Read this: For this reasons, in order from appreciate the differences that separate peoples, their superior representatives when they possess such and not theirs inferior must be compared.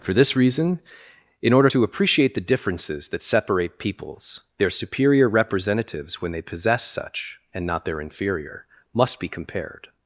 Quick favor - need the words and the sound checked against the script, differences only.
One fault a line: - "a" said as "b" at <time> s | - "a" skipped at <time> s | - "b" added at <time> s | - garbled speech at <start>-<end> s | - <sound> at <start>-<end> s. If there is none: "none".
- "reasons" said as "reason" at 0.3 s
- "from" said as "to" at 1.6 s
- "theirs" said as "their" at 7.8 s